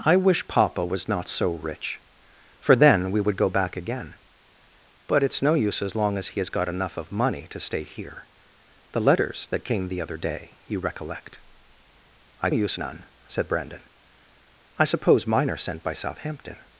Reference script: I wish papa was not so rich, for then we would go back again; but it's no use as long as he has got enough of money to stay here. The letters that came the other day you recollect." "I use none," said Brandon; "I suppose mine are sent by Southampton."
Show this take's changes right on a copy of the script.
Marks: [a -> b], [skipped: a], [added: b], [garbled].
I wish papa was not so rich, for then we would go back again; but it's no use as long as he has got enough of money to stay here. The letters that came the other day you recollect." "I use none," said Brandon; "I suppose mine are sent by Southampton."